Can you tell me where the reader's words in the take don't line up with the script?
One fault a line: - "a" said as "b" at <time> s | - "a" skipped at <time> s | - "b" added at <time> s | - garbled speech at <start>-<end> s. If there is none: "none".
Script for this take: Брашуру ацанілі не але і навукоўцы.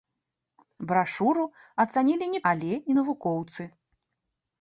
none